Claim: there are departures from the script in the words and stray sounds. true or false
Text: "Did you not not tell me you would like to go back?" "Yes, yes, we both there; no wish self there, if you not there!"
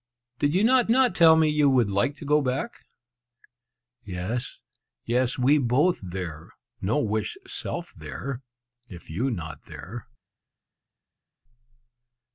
false